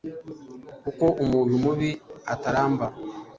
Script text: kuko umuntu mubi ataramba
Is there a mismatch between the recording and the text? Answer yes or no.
no